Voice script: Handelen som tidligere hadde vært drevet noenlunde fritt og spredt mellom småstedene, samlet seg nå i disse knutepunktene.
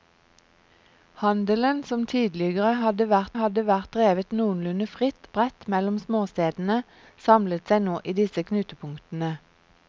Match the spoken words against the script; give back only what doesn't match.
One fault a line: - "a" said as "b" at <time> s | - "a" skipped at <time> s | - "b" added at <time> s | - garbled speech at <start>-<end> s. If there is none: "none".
- "hadde vært" added at 3.4 s
- "og" skipped at 5.3 s